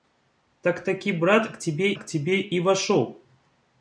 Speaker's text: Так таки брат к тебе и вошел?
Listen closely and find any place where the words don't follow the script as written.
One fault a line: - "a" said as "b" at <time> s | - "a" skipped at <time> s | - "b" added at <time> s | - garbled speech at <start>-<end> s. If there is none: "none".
- "к тебе" added at 1.9 s